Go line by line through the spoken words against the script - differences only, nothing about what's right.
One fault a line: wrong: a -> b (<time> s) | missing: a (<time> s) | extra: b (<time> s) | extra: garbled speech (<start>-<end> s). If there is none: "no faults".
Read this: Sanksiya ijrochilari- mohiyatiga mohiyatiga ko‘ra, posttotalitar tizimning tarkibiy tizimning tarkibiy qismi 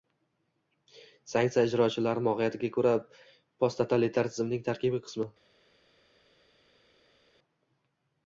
missing: mohiyatiga (2.7 s)
missing: tizimning tarkibiy (5.0 s)